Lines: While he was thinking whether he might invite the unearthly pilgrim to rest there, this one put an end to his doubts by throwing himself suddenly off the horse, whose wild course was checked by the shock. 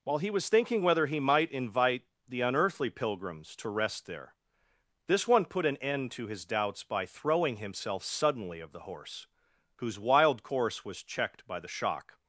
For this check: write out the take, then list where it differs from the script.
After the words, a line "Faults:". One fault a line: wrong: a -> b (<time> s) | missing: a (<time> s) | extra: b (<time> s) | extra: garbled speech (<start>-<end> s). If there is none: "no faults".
While he was thinking whether he might invite the unearthly pilgrims to rest there, this one put an end to his doubts by throwing himself suddenly of the horse, whose wild course was checked by the shock.
Faults:
wrong: pilgrim -> pilgrims (2.9 s)
wrong: off -> of (8.6 s)